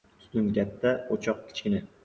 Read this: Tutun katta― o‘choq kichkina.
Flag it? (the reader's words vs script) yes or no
no